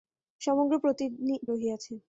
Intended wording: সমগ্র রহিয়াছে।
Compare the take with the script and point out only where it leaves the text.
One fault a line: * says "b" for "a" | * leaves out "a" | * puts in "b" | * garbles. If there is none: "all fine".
all fine